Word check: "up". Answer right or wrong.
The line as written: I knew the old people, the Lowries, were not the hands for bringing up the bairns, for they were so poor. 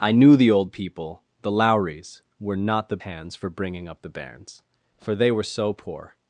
right